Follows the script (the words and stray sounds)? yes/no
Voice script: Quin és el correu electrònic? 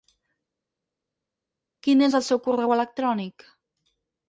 no